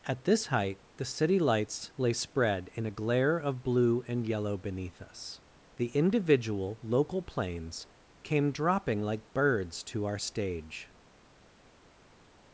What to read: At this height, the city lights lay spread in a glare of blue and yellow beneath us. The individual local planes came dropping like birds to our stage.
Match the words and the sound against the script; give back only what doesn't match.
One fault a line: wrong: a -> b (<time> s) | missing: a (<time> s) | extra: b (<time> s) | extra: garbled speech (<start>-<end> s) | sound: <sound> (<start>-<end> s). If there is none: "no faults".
no faults